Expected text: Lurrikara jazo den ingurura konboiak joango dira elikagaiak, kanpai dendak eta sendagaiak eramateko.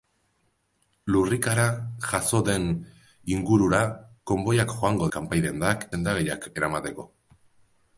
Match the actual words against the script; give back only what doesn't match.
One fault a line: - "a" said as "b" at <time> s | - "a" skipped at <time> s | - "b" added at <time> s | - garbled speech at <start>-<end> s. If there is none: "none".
- "dira elikagaiak" skipped at 5.1 s
- "eta" skipped at 5.9 s